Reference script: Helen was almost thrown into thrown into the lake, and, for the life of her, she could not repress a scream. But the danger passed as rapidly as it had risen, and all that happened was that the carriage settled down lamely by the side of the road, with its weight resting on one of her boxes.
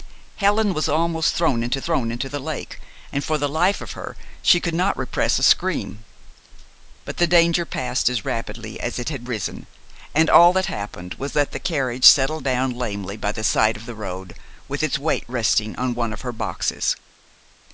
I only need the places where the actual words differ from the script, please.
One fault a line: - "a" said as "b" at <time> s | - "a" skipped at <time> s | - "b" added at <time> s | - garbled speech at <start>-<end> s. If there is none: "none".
none